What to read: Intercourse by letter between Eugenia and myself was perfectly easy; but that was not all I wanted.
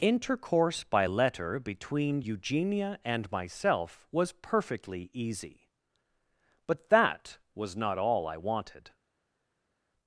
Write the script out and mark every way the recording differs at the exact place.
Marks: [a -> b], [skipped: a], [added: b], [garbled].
Intercourse by letter between Eugenia and myself was perfectly easy; but that was not all I wanted.